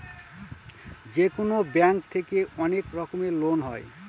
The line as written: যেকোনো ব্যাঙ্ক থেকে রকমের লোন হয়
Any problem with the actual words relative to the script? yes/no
yes